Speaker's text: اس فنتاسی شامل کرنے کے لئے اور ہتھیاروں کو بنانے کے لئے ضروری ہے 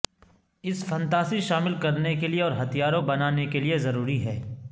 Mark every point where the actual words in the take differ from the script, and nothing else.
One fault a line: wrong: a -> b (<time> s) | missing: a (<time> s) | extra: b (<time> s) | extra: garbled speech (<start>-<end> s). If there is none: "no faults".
missing: کو (3.0 s)